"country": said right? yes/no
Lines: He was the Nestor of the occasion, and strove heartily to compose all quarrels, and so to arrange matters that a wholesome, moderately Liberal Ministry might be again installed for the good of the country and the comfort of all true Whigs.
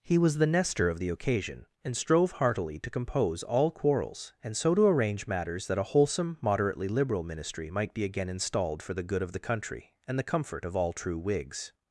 yes